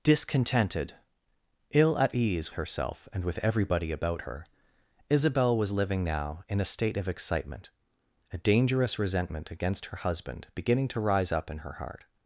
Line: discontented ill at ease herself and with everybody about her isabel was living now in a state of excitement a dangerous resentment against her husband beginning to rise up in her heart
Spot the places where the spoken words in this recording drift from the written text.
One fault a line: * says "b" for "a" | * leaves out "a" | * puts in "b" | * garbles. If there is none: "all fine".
all fine